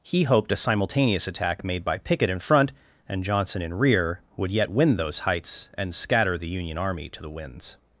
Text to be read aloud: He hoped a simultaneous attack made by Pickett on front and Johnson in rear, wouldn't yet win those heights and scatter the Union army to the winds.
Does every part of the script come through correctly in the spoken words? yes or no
no